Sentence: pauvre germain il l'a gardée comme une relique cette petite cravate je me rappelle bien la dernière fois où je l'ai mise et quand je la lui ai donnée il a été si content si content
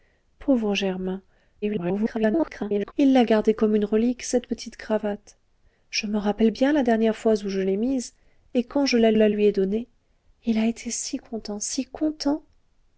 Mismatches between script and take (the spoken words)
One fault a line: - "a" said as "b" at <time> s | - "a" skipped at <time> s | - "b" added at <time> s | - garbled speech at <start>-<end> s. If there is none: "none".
- garbled speech at 1.6-2.9 s
- "la" added at 9.1 s